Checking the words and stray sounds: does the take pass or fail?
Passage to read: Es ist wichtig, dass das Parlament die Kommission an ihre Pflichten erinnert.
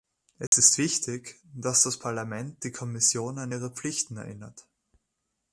fail